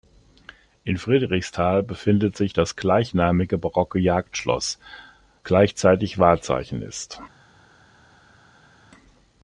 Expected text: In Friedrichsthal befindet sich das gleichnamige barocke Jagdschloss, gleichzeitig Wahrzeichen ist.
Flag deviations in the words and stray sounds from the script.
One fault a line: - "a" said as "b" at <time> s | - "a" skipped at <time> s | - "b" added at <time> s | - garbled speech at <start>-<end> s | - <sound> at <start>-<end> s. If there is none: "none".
none